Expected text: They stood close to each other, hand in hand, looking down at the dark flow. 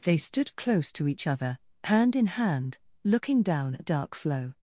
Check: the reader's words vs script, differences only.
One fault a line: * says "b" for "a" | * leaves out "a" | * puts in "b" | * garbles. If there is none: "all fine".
* leaves out "the"